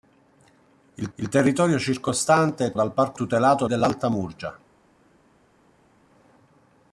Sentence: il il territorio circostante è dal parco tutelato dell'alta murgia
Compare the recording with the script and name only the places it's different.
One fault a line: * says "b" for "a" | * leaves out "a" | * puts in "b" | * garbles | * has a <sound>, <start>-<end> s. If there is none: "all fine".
all fine